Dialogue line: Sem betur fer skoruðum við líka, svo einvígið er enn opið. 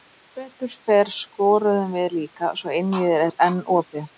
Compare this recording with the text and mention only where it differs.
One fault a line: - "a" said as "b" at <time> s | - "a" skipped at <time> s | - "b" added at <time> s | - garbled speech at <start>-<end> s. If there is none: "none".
none